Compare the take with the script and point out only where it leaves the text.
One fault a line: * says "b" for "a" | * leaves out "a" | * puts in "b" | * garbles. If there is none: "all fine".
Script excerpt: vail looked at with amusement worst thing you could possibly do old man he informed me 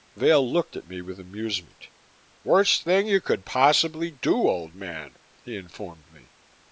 * puts in "me"